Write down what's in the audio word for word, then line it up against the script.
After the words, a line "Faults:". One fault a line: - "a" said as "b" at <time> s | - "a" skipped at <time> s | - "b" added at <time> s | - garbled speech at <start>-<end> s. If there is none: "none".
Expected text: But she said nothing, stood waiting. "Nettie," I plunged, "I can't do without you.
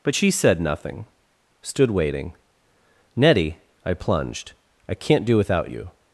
But she said nothing, stood waiting. "Nettie," I plunged, "I can't do without you.
Faults:
none